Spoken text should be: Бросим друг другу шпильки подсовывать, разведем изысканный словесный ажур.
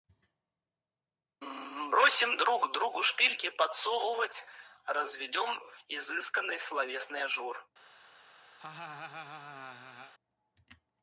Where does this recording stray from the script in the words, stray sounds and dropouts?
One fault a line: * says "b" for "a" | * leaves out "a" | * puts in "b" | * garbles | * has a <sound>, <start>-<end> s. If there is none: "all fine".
* has a laugh, 8.6-10.1 s